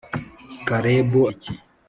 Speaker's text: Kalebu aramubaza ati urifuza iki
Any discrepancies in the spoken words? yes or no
yes